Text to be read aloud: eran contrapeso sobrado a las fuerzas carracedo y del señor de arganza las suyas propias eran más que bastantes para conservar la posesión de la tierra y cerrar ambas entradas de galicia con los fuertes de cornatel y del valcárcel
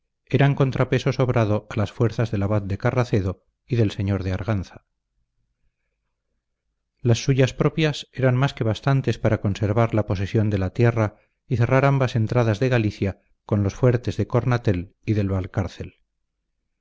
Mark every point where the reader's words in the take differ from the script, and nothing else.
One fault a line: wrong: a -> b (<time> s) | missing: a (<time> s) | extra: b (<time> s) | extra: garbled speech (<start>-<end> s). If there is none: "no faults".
extra: del abad de (2.3 s)